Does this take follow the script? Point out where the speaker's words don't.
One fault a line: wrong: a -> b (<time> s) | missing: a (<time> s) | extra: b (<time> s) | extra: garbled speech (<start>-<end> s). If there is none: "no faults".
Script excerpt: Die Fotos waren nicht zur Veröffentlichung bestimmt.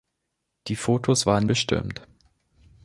missing: nicht zur Veröffentlichung (1.5 s)